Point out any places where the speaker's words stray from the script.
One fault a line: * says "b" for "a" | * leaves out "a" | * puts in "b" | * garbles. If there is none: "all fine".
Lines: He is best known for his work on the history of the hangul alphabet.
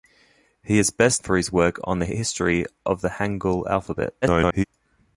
* leaves out "known"
* garbles